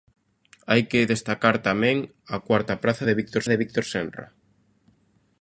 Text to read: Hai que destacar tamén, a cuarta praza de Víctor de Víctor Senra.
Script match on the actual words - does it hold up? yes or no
yes